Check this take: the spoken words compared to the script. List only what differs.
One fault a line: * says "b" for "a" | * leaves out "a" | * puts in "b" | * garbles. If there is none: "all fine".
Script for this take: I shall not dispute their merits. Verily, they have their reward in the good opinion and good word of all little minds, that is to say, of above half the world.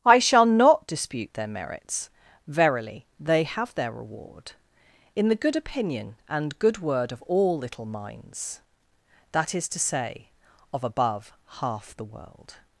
all fine